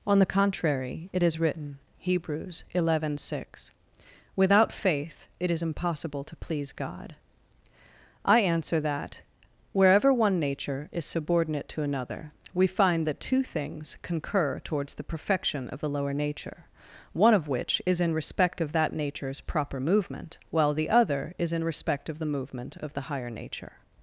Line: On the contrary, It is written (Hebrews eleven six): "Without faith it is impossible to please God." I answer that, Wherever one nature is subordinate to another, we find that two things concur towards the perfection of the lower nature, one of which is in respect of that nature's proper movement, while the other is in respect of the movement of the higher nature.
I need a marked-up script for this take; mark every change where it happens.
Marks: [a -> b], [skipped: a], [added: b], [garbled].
On the contrary, It is written (Hebrews eleven six): "Without faith it is impossible to please God." I answer that, Wherever one nature is subordinate to another, we find that two things concur towards the perfection of the lower nature, one of which is in respect of that nature's proper movement, while the other is in respect of the movement of the higher nature.